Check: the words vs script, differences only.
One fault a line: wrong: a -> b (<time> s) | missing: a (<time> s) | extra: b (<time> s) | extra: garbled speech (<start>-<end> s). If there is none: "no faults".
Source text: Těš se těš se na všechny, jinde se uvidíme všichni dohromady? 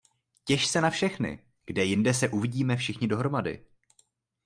missing: těš se (0.8 s)
extra: kde (1.6 s)